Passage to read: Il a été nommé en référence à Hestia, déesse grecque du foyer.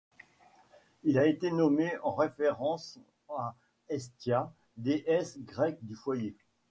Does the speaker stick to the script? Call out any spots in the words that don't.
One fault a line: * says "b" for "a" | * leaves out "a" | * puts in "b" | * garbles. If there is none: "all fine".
all fine